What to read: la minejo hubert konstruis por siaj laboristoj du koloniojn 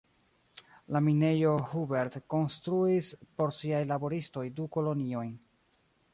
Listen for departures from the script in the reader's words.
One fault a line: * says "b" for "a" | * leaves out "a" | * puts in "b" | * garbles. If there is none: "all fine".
all fine